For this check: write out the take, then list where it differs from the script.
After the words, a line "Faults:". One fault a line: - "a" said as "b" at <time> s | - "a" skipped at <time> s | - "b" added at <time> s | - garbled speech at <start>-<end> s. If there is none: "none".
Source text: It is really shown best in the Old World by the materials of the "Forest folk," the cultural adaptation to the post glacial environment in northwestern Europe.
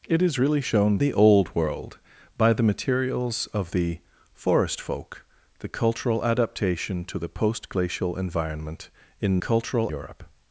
It is really shown the Old World by the materials of the "Forest folk," the cultural adaptation to the post glacial environment in cultural Europe.
Faults:
- "best in" skipped at 1.0 s
- "northwestern" said as "cultural" at 9.4 s